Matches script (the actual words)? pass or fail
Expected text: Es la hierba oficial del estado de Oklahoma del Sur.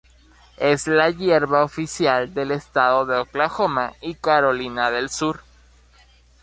fail